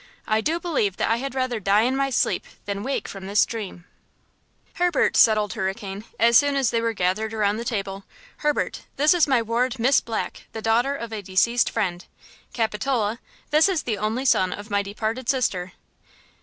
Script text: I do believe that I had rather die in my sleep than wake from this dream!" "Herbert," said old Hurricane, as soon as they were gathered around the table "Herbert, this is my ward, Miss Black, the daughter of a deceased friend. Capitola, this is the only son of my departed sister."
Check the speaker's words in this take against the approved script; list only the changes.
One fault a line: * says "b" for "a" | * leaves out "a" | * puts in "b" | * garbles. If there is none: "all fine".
all fine